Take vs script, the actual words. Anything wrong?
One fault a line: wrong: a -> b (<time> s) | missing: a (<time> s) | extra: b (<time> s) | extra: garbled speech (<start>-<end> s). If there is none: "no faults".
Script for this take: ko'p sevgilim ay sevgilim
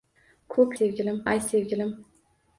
no faults